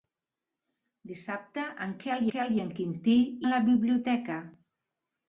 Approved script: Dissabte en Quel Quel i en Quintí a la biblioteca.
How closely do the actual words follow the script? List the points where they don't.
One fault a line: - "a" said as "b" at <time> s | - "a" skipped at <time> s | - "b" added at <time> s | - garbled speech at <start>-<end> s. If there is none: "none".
none